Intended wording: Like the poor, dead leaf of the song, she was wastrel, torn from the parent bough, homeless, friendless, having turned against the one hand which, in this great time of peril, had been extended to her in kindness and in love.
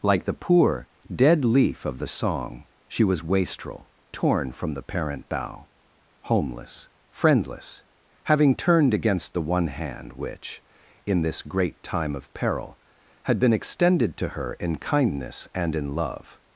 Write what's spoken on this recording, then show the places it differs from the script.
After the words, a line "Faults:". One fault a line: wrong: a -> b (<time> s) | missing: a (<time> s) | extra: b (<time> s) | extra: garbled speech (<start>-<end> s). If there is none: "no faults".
Like the poor, dead leaf of the song, she was wastrel, torn from the parent bough, homeless, friendless, having turned against the one hand which, in this great time of peril, had been extended to her in kindness and in love.
Faults:
no faults